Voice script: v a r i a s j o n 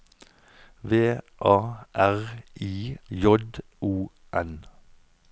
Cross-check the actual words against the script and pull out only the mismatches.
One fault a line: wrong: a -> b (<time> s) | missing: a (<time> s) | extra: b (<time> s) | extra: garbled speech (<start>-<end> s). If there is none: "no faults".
missing: a s (3.0 s)